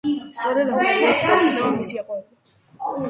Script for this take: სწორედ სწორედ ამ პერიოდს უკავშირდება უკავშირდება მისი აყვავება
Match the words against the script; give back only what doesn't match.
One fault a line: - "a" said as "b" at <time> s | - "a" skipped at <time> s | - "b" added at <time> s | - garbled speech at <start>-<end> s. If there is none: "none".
- "სწორედ" skipped at 0.7 s
- "უკავშირდება" skipped at 1.7 s